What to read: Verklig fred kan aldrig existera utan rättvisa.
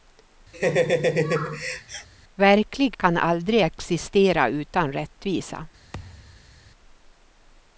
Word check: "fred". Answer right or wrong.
wrong